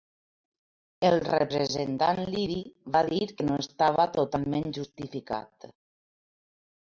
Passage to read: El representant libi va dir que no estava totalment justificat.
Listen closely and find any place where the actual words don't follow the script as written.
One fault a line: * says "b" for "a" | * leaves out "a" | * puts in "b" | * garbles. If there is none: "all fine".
all fine